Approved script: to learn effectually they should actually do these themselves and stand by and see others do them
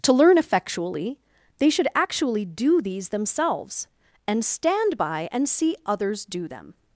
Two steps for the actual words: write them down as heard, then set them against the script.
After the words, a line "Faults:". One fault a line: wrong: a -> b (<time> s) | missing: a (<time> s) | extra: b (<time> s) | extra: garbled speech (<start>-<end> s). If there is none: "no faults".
to learn effectually they should actually do these themselves and stand by and see others do them
Faults:
no faults